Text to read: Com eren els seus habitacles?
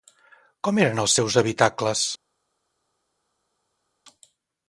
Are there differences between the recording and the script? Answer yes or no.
no